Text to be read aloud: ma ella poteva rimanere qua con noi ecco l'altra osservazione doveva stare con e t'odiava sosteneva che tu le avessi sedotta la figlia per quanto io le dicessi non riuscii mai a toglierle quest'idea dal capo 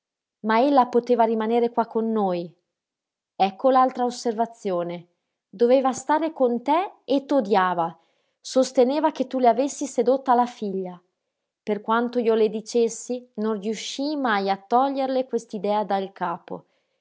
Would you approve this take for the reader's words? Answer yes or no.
no